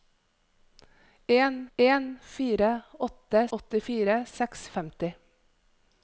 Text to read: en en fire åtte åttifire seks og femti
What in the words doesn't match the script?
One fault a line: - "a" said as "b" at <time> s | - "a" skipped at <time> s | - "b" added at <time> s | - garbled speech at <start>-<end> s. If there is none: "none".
none